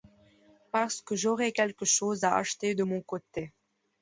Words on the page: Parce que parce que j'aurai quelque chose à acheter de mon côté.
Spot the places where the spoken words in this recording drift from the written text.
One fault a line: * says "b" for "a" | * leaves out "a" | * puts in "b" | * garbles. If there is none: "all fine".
* leaves out "parce que"